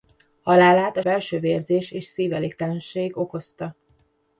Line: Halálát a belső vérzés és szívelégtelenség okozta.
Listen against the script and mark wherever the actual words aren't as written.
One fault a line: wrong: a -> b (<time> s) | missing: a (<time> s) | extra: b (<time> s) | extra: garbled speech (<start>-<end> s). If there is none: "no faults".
no faults